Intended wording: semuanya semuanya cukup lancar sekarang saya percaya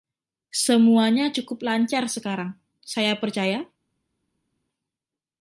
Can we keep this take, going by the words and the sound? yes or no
no